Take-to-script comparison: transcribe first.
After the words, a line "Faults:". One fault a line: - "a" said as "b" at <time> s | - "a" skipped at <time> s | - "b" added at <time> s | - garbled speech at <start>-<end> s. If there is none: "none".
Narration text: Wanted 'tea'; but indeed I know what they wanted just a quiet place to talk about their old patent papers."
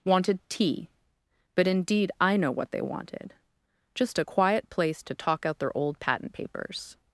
Wanted 'tea'; but indeed I know what they wanted just a quiet place to talk out their old patent papers."
Faults:
- "about" said as "out" at 5.5 s